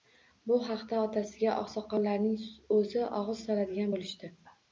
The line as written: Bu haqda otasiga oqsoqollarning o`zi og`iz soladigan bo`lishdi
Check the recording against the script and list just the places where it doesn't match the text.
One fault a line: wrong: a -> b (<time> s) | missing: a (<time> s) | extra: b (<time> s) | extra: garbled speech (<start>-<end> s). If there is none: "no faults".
no faults